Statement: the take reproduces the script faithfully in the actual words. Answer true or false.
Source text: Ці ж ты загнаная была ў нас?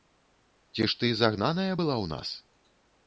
true